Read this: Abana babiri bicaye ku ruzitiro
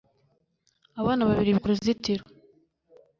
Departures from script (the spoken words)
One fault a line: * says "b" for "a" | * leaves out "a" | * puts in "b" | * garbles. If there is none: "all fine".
* leaves out "bicaye"